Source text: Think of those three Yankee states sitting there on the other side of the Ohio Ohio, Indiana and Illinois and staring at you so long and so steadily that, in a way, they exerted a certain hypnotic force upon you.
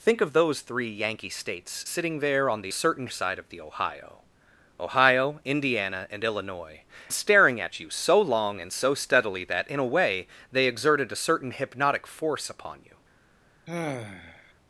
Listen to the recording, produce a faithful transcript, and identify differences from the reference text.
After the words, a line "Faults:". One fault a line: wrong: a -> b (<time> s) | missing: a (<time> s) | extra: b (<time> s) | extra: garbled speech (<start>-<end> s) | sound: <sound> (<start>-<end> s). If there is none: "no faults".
Think of those three Yankee states sitting there on the certain side of the Ohio Ohio, Indiana and Illinois staring at you so long and so steadily that, in a way, they exerted a certain hypnotic force upon you.
Faults:
wrong: other -> certain (2.7 s)
missing: and (6.8 s)
sound: sigh (13.7-14.5 s)